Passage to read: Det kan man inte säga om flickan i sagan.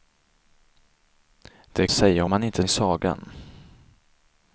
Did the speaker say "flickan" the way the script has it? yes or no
no